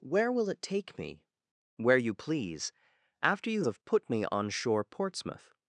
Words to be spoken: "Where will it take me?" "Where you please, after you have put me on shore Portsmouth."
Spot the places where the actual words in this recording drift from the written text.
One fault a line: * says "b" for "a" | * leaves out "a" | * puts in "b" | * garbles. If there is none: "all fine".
all fine